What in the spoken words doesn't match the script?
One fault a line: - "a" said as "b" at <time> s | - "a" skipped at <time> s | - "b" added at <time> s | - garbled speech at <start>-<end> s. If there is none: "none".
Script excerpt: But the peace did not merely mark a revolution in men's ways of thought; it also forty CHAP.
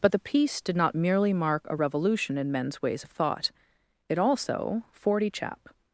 none